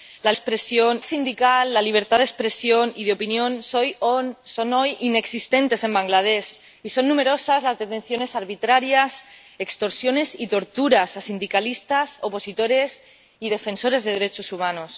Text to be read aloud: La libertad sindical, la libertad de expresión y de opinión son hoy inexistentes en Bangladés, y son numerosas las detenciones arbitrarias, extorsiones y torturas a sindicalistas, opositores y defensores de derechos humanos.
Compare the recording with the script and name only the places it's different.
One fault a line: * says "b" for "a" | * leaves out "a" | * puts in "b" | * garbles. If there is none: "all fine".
* says "expresión" for "libertad"